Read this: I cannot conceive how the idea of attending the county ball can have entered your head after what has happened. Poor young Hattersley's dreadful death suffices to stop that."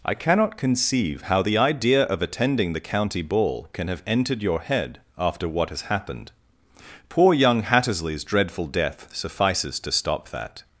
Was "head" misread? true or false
false